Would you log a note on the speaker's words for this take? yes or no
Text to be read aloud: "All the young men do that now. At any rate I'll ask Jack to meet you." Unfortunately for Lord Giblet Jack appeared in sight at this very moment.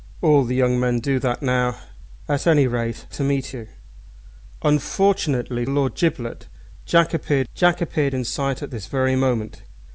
yes